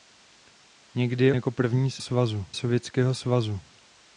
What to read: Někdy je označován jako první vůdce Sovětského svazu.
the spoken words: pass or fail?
fail